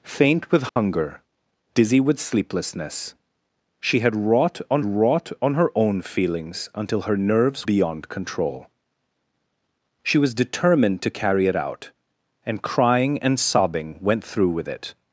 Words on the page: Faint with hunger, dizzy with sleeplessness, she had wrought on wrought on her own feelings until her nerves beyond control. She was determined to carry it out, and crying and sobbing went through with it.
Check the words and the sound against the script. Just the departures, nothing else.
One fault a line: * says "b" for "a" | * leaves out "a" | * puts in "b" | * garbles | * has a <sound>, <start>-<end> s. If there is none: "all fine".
* has a dropout, 0.7-0.8 s